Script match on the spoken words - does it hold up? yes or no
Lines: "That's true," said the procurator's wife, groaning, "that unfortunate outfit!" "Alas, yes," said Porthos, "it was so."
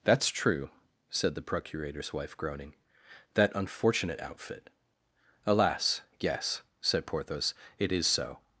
no